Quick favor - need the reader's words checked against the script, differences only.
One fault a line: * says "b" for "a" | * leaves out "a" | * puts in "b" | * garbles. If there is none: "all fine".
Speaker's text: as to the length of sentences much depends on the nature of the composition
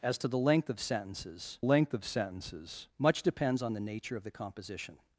* puts in "length of sentences"